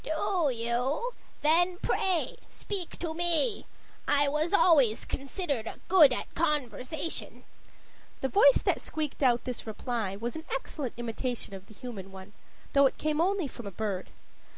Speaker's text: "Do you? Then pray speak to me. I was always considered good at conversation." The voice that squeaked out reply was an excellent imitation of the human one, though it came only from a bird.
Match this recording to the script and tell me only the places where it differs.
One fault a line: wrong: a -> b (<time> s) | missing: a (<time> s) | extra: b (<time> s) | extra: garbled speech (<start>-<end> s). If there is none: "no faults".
extra: this (9.4 s)